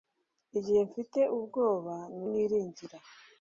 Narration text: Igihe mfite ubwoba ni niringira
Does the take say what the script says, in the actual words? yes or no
yes